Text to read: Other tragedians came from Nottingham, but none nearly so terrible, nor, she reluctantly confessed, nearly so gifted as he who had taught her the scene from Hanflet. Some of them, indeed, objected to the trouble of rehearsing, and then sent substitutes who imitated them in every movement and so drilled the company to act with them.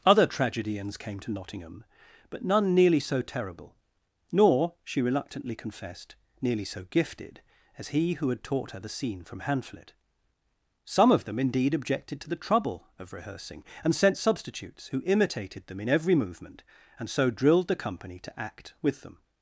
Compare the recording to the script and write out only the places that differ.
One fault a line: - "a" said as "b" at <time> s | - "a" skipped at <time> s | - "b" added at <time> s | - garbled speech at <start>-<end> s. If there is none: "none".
- "from" said as "to" at 1.2 s
- "then" skipped at 13.9 s